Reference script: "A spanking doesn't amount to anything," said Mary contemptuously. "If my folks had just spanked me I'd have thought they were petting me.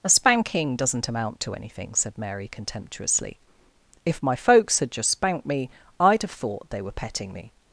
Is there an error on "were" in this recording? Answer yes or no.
no